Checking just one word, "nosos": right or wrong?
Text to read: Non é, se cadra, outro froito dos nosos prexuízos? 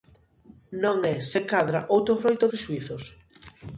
wrong